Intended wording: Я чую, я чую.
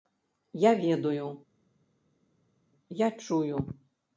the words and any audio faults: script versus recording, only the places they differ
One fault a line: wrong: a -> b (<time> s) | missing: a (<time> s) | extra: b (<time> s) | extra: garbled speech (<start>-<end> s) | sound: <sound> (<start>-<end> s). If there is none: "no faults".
wrong: чую -> ведаю (0.7 s)